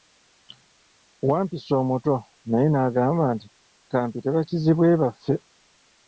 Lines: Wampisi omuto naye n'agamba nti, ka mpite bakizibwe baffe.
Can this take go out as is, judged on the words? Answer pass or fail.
pass